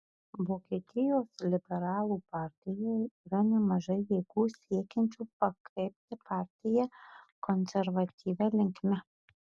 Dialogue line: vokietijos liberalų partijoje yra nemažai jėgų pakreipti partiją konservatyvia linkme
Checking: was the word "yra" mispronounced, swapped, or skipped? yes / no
no